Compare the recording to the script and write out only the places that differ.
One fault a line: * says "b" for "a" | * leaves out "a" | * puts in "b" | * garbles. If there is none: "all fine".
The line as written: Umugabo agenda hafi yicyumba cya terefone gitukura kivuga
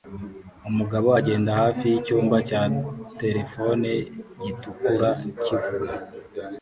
all fine